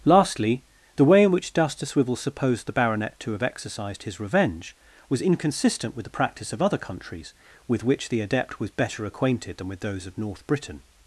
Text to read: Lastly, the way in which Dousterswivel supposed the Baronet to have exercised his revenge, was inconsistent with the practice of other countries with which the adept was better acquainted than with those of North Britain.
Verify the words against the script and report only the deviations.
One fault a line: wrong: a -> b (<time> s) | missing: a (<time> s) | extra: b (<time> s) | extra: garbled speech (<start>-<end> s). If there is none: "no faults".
no faults